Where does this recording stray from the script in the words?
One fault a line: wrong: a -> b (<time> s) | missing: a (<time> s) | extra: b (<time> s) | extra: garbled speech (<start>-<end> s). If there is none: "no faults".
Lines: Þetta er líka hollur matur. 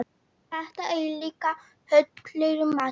no faults